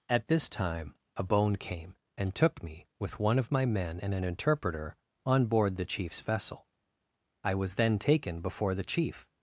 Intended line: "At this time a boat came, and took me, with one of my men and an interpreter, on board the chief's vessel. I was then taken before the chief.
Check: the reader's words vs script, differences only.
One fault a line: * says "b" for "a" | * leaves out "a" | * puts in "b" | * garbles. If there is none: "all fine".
* says "bone" for "boat"